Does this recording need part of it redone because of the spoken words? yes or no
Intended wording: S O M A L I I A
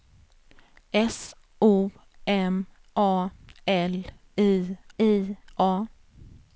no